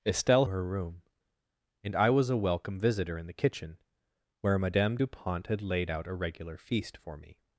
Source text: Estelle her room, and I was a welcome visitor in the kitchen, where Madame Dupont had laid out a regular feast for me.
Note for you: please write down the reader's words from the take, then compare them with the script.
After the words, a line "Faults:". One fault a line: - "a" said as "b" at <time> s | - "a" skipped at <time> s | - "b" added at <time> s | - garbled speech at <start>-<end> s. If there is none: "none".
Estelle her room, and I was a welcome visitor in the kitchen, where Madame Dupont had laid out a regular feast for me.
Faults:
none